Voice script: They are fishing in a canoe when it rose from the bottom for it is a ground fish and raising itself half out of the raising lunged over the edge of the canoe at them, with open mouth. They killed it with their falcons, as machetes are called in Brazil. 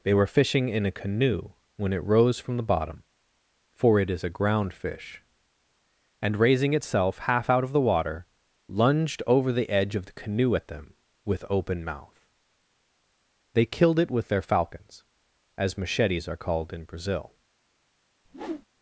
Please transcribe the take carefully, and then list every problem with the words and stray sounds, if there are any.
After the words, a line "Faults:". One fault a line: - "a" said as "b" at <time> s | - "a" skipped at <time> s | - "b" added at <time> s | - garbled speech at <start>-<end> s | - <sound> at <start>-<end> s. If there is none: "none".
They were fishing in a canoe when it rose from the bottom for it is a ground fish and raising itself half out of the water lunged over the edge of the canoe at them, with open mouth. They killed it with their falcons, as machetes are called in Brazil.
Faults:
- "are" said as "were" at 0.1 s
- "raising" said as "water" at 7.8 s
- whoosh at 18.2-18.7 s